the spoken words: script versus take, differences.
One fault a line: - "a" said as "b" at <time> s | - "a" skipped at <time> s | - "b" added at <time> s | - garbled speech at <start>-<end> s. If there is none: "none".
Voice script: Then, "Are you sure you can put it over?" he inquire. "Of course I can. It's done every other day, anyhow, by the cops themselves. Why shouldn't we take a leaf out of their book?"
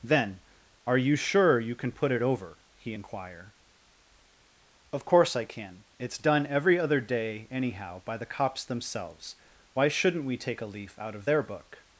none